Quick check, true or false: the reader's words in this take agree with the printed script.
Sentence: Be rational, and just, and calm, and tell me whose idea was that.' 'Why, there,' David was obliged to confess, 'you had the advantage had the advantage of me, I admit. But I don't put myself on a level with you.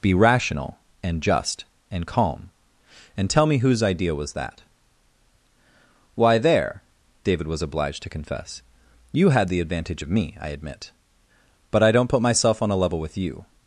false